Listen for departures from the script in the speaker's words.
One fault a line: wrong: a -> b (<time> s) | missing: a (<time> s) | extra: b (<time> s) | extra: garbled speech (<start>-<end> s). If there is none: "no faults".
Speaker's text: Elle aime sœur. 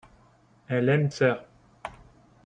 no faults